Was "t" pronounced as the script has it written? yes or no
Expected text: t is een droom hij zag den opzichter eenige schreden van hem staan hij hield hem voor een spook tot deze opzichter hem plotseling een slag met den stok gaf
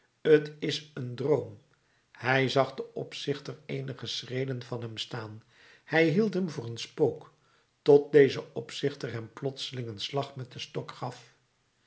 yes